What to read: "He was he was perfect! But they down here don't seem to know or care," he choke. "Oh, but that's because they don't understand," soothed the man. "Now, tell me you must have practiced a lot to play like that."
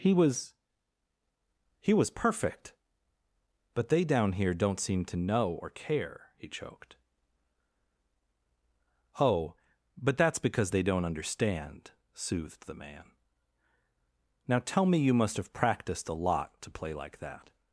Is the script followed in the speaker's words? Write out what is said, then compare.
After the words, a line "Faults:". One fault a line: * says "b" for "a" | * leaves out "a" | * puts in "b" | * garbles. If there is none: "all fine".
"He was he was perfect! But they down here don't seem to know or care," he choked. "Oh, but that's because they don't understand," soothed the man. "Now, tell me you must have practiced a lot to play like that."
Faults:
* says "choked" for "choke"